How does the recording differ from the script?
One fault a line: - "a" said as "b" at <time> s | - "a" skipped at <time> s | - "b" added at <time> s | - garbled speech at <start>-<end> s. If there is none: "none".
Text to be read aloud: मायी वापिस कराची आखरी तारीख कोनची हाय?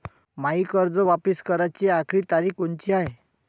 - "कर्ज" added at 0.7 s